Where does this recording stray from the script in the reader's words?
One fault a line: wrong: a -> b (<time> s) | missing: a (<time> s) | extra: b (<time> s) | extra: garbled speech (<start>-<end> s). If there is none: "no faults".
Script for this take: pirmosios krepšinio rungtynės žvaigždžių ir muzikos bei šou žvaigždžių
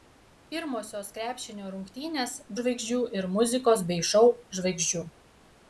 no faults